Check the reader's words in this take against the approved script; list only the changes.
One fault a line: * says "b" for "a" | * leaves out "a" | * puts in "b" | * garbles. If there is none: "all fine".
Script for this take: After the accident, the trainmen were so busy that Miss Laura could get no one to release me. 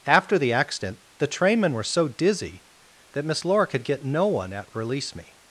* says "dizzy" for "busy"
* says "at" for "to"